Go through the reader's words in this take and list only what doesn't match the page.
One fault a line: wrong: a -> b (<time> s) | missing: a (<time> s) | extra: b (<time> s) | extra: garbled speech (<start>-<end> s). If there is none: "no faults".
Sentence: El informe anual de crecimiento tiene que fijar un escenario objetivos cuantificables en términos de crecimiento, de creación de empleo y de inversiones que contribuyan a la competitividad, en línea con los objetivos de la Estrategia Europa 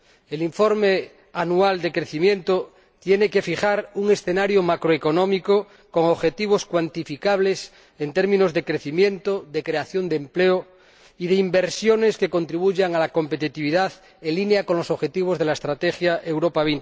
extra: macroeconómico con (4.6 s)